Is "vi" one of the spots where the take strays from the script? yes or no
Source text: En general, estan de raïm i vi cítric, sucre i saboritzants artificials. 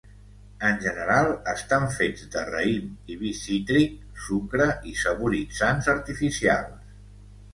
no